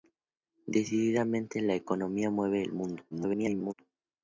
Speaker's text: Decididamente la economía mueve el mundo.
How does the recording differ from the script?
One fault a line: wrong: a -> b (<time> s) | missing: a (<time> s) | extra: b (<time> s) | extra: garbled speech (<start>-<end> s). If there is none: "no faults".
extra: garbled speech (3.1-3.7 s)